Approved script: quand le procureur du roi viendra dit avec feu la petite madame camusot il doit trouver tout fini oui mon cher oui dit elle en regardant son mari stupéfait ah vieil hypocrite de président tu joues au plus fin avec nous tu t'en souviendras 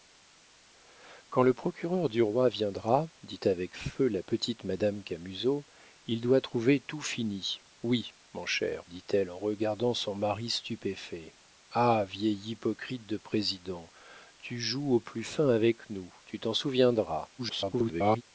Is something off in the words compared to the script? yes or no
yes